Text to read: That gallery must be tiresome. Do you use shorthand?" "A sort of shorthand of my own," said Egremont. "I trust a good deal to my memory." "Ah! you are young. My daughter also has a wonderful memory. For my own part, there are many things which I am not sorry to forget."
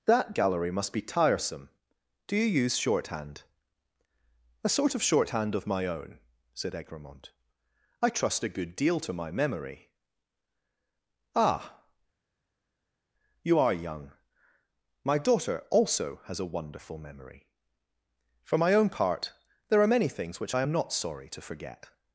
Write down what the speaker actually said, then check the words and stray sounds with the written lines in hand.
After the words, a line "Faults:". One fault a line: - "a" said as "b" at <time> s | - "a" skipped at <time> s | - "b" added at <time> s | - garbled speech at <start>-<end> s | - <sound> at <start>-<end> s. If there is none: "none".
That gallery must be tiresome. Do you use shorthand?" "A sort of shorthand of my own," said Egremont. "I trust a good deal to my memory." "Ah! you are young. My daughter also has a wonderful memory. For my own part, there are many things which I am not sorry to forget."
Faults:
none